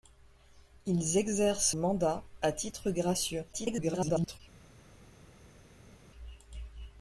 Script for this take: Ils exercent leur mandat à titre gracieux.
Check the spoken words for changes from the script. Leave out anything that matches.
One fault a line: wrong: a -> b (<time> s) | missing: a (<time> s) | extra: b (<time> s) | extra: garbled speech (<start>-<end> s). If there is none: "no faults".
missing: leur (1.8 s)
extra: garbled speech (3.5-4.4 s)